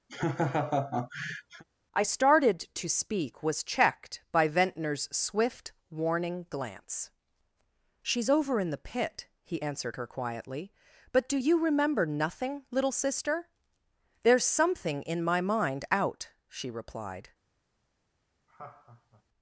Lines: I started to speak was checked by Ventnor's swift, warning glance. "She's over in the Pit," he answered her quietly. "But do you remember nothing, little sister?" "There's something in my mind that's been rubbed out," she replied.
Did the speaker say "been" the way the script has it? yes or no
no